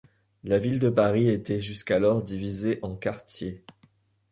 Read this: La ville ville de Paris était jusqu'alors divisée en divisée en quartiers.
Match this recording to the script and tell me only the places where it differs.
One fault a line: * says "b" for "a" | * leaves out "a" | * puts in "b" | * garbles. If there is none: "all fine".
* leaves out "ville"
* leaves out "divisée en"